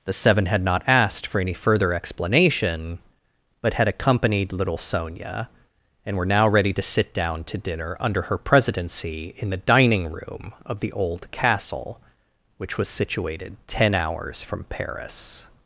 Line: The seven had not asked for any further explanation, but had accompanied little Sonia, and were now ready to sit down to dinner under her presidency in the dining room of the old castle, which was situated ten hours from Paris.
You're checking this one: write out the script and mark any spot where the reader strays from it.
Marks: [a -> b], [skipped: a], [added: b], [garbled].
The seven had not asked for any further explanation, but had accompanied little Sonia, and were now ready to sit down to dinner under her presidency in the dining room of the old castle, which was situated ten hours from Paris.